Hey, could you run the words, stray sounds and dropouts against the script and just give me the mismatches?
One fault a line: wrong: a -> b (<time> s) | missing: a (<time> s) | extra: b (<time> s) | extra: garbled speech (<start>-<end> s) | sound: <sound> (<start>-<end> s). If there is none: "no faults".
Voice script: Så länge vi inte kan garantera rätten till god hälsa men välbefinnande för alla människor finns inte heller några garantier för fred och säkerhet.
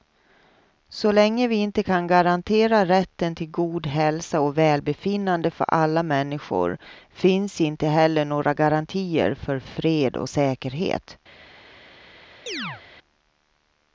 wrong: men -> och (4.4 s)
sound: chirp (12.5-12.8 s)